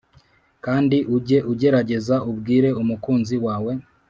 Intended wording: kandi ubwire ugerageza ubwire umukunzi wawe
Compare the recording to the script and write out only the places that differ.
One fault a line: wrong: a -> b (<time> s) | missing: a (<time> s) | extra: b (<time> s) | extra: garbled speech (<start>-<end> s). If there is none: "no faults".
wrong: ubwire -> ujye (1.1 s)